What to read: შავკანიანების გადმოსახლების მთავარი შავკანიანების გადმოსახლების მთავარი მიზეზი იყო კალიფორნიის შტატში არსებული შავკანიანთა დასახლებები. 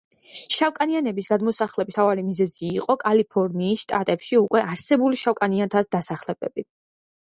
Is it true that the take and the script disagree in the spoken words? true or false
true